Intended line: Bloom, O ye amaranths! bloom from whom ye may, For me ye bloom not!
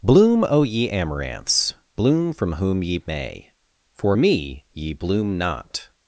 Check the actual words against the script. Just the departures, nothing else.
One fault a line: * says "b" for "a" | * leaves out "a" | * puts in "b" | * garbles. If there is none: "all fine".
all fine